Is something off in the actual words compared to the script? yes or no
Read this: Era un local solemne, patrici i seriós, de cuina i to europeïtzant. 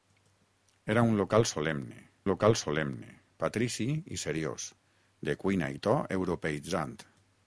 yes